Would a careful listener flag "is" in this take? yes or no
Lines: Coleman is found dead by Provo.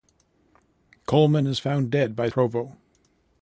no